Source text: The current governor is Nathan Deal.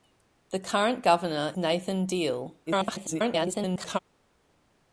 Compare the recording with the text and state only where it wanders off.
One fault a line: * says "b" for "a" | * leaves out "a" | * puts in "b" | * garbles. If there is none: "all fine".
* leaves out "is"
* garbles